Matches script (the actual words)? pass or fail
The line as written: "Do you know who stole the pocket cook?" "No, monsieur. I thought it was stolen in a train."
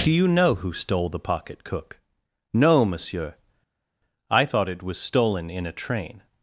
pass